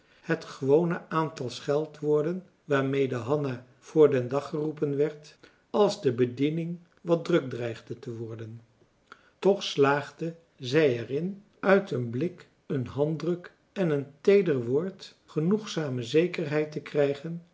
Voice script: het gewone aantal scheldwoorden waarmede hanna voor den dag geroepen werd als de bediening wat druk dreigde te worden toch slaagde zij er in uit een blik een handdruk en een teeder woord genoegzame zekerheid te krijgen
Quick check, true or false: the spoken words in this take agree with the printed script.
true